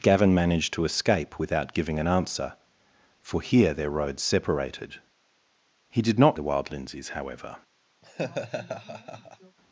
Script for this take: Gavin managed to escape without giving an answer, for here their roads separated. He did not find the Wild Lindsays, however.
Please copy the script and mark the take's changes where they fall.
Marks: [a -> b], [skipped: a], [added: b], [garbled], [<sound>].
Gavin managed to escape without giving an answer, for here their roads separated. He did not [skipped: find] the Wild Lindsays, however. [laugh]